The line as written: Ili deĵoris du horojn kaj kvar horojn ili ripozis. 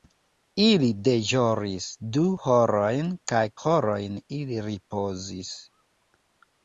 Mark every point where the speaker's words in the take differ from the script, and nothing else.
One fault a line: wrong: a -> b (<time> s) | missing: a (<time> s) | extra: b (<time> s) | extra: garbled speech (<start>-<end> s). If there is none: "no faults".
missing: kvar (3.4 s)